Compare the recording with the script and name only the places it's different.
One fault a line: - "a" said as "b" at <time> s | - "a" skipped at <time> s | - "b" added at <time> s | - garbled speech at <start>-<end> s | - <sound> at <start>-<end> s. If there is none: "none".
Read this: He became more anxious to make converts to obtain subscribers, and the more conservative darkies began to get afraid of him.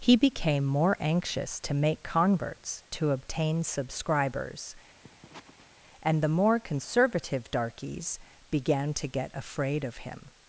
- sniff at 5.0-5.7 s